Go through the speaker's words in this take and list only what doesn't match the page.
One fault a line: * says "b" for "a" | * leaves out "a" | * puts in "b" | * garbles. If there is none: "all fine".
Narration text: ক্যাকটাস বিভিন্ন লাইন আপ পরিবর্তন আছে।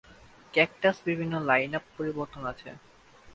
all fine